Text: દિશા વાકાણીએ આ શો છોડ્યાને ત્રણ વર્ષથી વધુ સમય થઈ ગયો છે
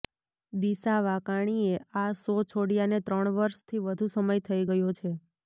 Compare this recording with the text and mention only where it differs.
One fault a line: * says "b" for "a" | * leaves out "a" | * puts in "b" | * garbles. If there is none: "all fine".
all fine